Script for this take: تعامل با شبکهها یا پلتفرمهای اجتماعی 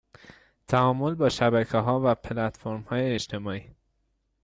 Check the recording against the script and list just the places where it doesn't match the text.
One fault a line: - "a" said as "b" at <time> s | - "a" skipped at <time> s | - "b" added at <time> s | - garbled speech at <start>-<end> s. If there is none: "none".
- "یا" said as "و" at 2.0 s